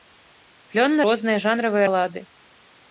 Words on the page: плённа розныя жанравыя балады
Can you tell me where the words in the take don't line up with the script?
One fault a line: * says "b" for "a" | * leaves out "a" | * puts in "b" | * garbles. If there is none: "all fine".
all fine